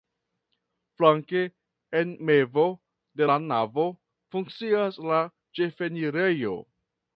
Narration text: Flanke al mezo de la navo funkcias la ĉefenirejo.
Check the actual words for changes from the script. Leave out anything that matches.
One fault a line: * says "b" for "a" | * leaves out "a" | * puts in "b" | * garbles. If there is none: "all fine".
* says "en" for "al"